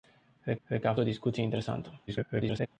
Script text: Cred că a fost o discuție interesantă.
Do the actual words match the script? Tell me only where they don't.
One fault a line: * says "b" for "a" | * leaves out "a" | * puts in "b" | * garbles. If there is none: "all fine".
* puts in "cred"
* leaves out "fost"
* garbles